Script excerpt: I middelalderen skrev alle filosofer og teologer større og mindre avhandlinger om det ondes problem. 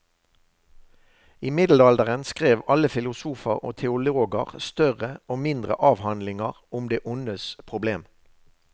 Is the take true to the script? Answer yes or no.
yes